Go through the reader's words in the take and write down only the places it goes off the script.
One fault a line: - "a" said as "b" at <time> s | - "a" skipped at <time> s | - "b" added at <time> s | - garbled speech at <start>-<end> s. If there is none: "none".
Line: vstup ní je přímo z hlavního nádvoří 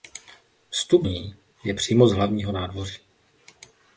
none